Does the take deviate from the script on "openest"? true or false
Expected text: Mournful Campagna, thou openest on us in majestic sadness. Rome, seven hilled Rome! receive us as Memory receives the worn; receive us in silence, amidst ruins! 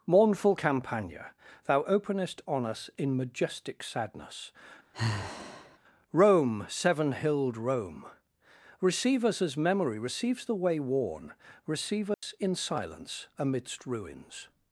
false